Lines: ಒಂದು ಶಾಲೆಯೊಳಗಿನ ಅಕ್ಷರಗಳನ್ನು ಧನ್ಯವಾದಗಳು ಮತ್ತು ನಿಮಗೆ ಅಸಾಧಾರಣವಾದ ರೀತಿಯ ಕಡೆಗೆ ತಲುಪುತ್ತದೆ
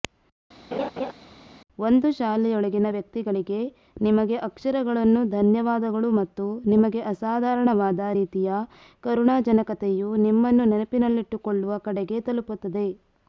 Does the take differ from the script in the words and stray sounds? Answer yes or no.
yes